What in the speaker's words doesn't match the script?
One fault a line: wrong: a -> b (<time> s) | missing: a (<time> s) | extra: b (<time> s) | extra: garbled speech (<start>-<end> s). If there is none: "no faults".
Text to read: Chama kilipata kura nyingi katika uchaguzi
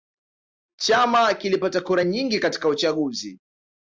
no faults